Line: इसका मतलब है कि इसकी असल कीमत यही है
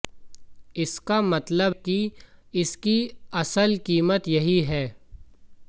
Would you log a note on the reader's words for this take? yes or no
yes